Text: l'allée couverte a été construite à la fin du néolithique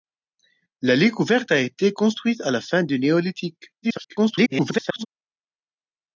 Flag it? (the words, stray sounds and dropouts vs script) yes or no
yes